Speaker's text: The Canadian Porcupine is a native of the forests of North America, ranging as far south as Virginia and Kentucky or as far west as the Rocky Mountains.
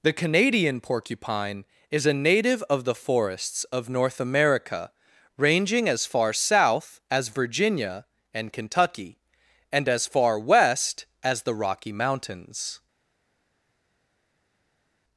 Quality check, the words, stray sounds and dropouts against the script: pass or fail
fail